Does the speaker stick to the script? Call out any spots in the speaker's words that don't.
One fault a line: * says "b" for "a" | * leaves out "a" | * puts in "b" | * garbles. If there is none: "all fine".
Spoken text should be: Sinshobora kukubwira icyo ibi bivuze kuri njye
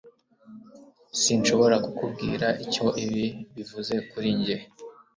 all fine